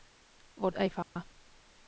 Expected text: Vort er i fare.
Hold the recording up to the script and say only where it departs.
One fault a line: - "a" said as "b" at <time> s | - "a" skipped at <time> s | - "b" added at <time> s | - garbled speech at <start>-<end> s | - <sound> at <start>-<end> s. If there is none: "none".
- dropout at 1.0-1.2 s